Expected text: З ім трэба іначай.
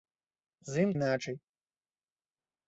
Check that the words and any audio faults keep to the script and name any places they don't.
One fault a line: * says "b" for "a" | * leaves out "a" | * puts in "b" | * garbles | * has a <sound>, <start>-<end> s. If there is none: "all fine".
* leaves out "трэба"